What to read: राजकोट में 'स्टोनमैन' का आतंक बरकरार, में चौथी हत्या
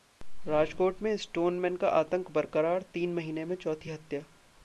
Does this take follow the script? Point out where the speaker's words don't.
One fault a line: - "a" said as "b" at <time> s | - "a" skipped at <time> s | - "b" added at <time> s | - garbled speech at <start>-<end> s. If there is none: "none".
- "तीन महीने" added at 2.9 s